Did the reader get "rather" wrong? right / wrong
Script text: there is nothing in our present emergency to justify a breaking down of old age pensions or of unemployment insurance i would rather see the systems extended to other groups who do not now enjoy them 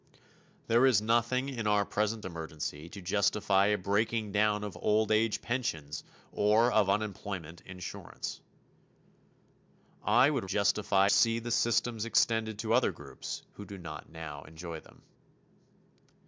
wrong